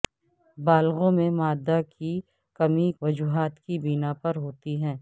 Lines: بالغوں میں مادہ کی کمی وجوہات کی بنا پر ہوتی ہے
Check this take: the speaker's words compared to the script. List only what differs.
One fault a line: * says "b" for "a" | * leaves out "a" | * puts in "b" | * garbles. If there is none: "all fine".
all fine